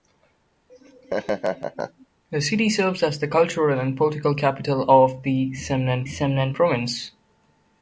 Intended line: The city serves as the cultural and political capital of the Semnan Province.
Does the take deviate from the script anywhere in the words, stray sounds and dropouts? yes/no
yes